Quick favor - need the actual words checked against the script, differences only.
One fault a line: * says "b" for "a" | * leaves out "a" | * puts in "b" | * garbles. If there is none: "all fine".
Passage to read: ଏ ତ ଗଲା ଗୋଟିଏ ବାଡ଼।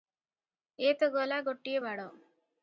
all fine